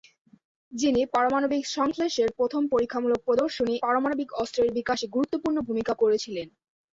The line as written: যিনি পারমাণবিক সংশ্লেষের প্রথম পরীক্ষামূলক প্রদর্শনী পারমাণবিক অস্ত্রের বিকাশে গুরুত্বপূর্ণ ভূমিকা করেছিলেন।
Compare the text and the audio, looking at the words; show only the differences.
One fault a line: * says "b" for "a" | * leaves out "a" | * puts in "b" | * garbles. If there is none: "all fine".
all fine